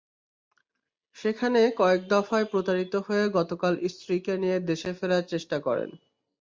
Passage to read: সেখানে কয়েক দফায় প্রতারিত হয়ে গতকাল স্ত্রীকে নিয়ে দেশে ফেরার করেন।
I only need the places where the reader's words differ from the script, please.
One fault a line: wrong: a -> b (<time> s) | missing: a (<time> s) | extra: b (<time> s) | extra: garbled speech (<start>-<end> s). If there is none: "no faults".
extra: চেষ্টা (5.3 s)